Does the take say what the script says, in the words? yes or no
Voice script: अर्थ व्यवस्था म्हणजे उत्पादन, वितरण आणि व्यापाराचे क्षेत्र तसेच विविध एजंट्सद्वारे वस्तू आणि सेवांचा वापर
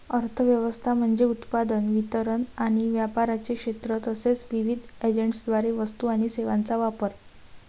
yes